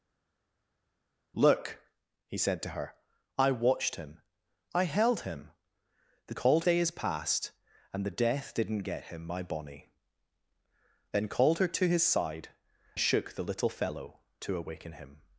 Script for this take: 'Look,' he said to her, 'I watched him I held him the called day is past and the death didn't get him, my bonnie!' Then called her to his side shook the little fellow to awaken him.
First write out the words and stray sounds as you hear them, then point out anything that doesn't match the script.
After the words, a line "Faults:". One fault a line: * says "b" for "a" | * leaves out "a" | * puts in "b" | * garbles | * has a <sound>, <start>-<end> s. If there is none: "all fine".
'Look,' he said to her, 'I watched him I held him the called day is past and the death didn't get him, my bonnie!' Then called her to his side shook the little fellow to awaken him.
Faults:
all fine